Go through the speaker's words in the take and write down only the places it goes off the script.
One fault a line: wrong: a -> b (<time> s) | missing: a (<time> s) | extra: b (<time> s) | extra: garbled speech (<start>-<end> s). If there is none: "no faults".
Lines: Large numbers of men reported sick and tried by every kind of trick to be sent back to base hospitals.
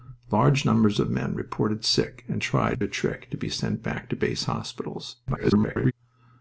missing: by every kind (2.8 s)
extra: garbled speech (5.3-5.9 s)